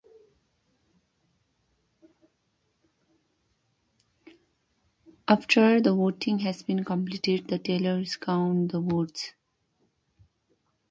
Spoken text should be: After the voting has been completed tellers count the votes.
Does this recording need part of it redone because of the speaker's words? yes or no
yes